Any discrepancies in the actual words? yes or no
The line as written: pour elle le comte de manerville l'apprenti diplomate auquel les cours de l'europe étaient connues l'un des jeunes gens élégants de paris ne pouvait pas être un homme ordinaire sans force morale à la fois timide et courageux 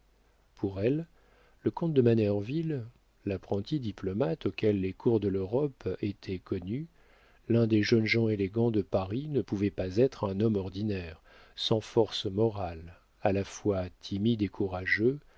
no